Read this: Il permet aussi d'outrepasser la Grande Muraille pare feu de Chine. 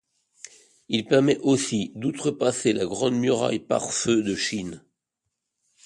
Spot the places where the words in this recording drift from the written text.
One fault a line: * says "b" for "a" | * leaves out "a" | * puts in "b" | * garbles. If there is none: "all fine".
all fine